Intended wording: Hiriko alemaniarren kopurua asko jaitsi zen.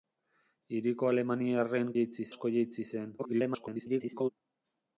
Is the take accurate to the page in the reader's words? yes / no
no